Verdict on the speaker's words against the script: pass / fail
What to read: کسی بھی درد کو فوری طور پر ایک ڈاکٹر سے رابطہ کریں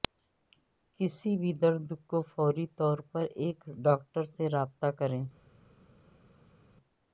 pass